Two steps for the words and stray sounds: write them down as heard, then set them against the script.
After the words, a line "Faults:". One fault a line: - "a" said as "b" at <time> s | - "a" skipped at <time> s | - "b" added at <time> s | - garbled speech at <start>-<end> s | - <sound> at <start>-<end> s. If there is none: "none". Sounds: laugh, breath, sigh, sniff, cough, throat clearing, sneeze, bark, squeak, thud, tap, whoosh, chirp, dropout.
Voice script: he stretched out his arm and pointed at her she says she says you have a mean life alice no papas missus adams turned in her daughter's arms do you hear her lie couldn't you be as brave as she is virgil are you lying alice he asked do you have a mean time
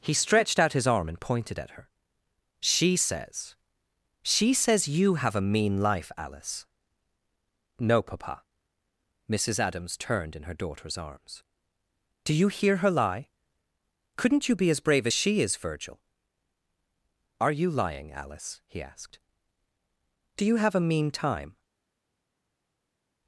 he stretched out his arm and pointed at her she says she says you have a mean life alice no papa missus adams turned in her daughter's arms do you hear her lie couldn't you be as brave as she is virgil are you lying alice he asked do you have a mean time
Faults:
- "papas" said as "papa" at 8.0 s